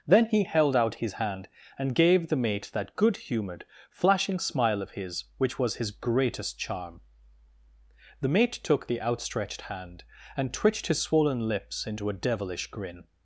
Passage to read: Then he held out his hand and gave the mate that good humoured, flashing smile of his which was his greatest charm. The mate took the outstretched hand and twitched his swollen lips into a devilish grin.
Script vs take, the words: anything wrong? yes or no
no